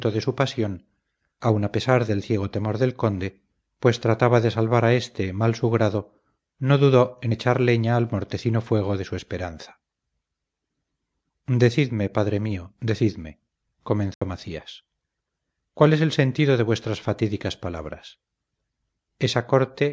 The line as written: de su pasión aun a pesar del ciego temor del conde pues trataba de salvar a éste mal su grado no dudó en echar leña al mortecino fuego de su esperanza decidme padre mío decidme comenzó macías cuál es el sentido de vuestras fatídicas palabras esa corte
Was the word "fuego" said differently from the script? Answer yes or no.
no